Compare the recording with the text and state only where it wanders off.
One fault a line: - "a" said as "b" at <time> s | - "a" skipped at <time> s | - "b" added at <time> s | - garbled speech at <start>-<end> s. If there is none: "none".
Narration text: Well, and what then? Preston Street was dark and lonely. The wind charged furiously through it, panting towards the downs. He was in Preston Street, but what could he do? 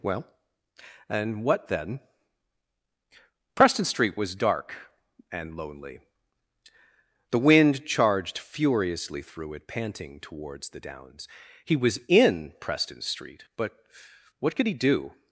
none